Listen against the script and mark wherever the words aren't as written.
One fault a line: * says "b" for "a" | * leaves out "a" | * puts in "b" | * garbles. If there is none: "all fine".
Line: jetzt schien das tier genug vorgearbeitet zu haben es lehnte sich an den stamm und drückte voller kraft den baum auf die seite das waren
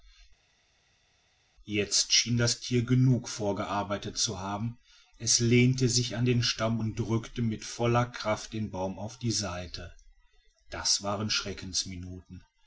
* puts in "mit"